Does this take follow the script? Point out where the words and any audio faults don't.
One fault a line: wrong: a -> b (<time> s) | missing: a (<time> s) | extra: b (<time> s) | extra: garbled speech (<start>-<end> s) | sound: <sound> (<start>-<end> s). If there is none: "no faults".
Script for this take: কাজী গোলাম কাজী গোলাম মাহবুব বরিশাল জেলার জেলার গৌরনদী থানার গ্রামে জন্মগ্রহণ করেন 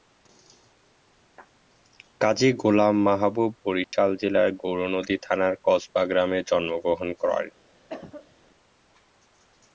missing: কাজী গোলাম (3.0 s)
sound: dropout (3.8-3.9 s)
missing: জেলার (4.5 s)
extra: কসবা (5.7 s)
sound: cough (7.9-8.4 s)